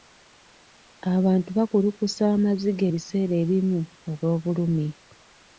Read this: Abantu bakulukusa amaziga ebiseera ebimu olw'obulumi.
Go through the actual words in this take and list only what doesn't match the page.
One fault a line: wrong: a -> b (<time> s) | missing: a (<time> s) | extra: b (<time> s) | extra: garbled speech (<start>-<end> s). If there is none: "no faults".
no faults